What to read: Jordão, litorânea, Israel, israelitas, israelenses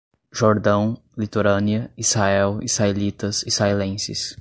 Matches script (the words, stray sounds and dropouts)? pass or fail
pass